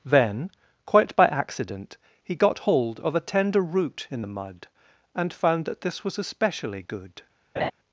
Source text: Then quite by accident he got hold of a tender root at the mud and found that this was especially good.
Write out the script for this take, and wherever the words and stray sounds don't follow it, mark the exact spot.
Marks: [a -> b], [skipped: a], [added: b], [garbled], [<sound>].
Then quite by accident he got hold of a tender root [at -> in] the mud and found that this was especially good. [laugh]